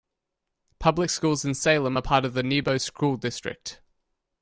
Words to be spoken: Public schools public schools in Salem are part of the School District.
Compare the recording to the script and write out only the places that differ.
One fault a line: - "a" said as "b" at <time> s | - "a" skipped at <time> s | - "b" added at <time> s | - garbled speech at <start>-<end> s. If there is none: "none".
- "public schools" skipped at 1.4 s
- "Nebo" added at 2.4 s